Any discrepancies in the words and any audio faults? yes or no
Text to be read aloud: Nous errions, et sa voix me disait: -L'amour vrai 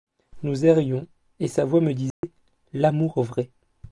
yes